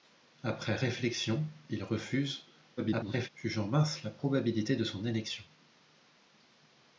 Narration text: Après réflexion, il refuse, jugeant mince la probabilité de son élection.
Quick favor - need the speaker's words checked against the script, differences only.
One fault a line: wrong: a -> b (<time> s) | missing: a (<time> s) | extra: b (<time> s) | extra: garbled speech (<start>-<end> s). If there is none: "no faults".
extra: garbled speech (2.8-3.3 s)